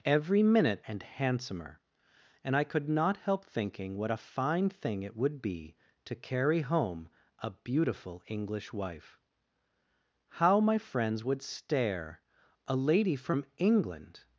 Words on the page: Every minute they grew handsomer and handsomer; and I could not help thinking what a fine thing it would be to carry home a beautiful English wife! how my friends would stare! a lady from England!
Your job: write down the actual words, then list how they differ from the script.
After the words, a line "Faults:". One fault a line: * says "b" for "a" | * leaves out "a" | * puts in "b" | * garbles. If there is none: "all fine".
Every minute and handsomer; and I could not help thinking what a fine thing it would be to carry home a beautiful English wife! how my friends would stare! a lady from England!
Faults:
* leaves out "they grew handsomer"